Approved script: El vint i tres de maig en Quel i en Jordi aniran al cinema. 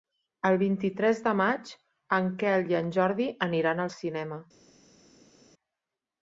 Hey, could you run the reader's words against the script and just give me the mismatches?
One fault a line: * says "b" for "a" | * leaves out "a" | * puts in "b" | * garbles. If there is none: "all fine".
all fine